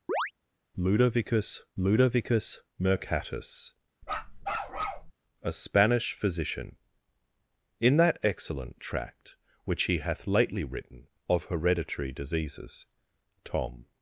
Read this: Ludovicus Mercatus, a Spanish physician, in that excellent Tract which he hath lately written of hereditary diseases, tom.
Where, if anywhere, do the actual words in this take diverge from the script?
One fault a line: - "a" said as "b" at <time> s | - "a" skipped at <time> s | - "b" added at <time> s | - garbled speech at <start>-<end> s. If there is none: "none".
- "ludovicus" added at 1.8 s